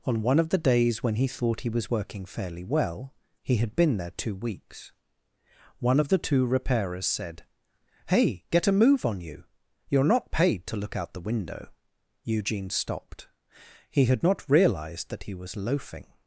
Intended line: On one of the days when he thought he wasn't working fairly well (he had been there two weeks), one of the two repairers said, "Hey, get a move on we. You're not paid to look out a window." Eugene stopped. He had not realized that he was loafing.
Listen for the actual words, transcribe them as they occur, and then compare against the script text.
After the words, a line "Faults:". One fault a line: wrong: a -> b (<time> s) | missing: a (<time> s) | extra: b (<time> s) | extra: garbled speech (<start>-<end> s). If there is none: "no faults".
On one of the days when he thought he was working fairly well (he had been there two weeks), one of the two repairers said, "Hey, get a move on you. You're not paid to look out the window." Eugene stopped. He had not realized that he was loafing.
Faults:
wrong: wasn't -> was (1.7 s)
wrong: we -> you (9.2 s)
wrong: a -> the (11.1 s)